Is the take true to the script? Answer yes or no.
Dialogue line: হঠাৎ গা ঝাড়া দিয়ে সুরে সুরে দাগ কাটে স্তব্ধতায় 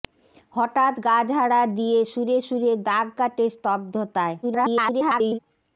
no